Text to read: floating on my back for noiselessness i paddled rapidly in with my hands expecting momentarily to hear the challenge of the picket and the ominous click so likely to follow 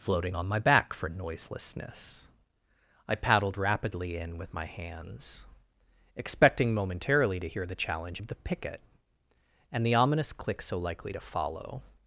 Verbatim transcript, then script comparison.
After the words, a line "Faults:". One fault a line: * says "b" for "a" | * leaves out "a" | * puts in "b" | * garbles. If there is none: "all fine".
floating on my back for noiselessness i paddled rapidly in with my hands expecting momentarily to hear the challenge of the picket and the ominous click so likely to follow
Faults:
all fine